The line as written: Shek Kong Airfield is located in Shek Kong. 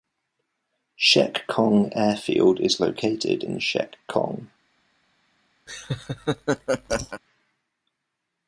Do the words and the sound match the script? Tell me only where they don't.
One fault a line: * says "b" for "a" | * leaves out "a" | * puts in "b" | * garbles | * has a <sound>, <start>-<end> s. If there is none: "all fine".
* has a laugh, 5.7-7.2 s